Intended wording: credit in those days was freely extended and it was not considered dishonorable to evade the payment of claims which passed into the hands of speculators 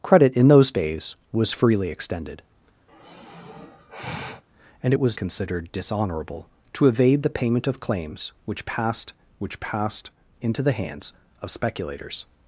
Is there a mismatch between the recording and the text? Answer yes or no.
yes